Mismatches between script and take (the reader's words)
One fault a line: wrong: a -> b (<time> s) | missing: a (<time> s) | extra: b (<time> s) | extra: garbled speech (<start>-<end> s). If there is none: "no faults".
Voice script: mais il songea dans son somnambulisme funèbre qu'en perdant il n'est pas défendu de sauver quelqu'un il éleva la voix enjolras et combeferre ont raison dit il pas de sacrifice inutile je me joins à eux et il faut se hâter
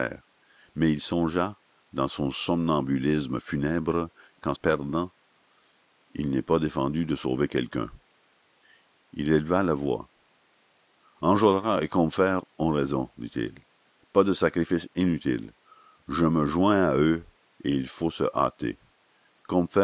no faults